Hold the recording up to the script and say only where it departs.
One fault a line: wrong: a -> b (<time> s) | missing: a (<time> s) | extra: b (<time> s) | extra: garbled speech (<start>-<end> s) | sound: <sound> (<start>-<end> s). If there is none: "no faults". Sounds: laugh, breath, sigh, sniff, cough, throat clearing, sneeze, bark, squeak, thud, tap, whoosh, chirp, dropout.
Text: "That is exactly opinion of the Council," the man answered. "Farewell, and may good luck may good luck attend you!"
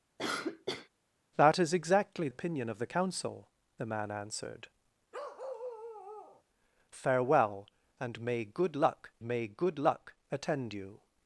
sound: cough (0.2-0.9 s)
sound: bark (5.1-6.4 s)